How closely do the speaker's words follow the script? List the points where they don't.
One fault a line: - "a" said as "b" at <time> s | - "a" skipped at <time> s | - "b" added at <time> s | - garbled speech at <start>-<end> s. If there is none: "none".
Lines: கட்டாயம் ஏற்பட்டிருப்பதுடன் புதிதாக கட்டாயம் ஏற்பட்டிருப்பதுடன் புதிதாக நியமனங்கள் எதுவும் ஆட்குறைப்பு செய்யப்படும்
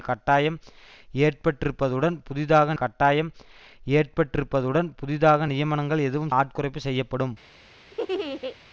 none